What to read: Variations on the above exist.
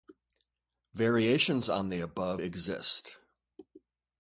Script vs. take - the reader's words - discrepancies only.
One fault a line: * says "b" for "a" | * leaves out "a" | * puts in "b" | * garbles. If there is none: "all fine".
all fine